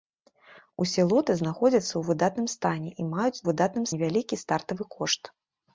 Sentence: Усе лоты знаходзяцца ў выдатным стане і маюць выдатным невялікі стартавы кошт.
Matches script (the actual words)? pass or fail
pass